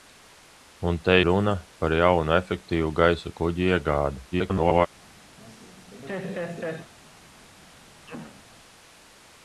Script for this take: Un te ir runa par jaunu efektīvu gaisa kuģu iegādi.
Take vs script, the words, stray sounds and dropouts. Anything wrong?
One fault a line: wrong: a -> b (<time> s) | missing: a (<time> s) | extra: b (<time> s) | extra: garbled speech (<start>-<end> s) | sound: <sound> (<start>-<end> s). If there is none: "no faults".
missing: ir (1.2 s)
extra: garbled speech (4.3-4.9 s)
sound: laugh (5.4-6.9 s)
sound: throat clearing (8.1-8.4 s)